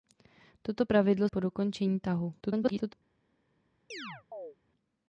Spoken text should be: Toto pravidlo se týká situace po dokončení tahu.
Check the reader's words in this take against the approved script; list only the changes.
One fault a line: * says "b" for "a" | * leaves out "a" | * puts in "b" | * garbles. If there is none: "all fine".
* leaves out "se týká situace"
* garbles